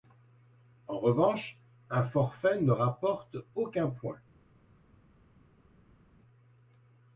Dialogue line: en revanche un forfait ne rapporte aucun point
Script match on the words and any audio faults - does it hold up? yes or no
yes